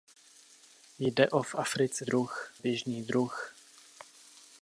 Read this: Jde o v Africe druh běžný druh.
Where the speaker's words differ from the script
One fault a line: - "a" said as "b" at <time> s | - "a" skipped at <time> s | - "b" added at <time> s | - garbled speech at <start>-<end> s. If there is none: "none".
none